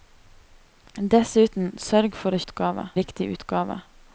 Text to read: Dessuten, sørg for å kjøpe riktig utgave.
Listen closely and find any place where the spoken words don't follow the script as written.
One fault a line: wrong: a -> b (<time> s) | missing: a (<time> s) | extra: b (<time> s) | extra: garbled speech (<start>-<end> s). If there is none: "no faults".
wrong: kjøpe -> utgave (2.4 s)